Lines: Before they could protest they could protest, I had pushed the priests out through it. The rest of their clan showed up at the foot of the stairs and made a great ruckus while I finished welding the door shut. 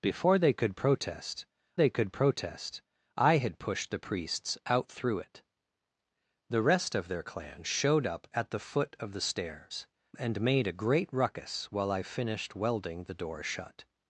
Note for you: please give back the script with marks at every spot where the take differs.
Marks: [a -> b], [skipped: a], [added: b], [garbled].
Before they could protest they could protest, I had pushed the priests out through it. The rest of their clan showed up at the foot of the stairs and made a great ruckus while I finished welding the door shut.